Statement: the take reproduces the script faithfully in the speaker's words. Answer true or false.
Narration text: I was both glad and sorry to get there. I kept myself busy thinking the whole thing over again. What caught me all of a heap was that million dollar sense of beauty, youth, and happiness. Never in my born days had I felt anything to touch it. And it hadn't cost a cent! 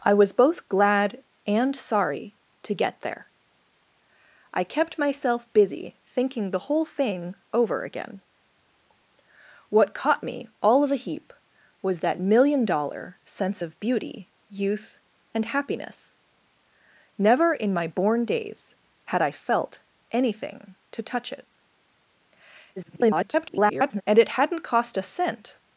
false